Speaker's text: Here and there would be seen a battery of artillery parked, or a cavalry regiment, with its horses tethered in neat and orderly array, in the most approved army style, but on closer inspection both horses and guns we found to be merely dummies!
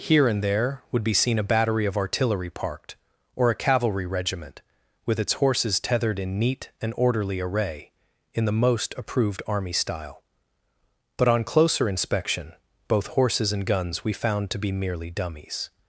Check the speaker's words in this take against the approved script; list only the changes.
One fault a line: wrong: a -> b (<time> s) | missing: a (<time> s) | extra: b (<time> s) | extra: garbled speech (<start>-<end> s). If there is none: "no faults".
no faults